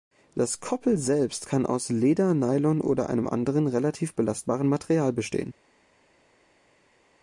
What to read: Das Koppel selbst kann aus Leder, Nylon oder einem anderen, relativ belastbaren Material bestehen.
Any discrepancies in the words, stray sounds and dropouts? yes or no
no